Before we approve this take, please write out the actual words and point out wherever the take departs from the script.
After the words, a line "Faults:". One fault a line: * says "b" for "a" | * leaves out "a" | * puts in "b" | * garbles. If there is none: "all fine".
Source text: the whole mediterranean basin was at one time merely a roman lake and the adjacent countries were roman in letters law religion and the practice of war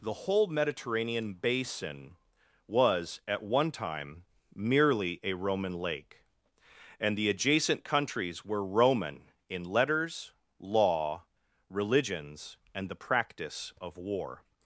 the whole mediterranean basin was at one time merely a roman lake and the adjacent countries were roman in letters law religions and the practice of war
Faults:
* says "religions" for "religion"